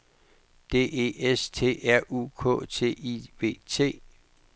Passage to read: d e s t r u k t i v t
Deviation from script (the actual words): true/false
false